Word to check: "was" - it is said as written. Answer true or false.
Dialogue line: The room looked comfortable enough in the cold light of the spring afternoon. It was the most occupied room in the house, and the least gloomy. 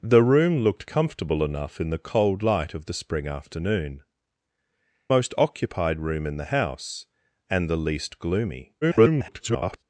false